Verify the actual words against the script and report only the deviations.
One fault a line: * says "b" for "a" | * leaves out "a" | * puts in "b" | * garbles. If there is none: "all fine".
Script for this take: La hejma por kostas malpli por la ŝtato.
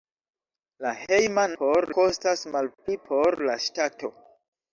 all fine